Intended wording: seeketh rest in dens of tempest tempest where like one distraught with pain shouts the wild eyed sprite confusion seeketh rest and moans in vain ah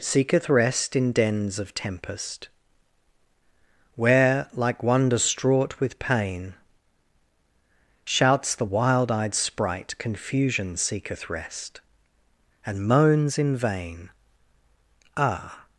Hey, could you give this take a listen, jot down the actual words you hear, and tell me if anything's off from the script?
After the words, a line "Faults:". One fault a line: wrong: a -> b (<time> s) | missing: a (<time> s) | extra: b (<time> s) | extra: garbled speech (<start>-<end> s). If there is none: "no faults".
seeketh rest in dens of tempest where like one distraught with pain shouts the wild eyed sprite confusion seeketh rest and moans in vain ah
Faults:
missing: tempest (2.5 s)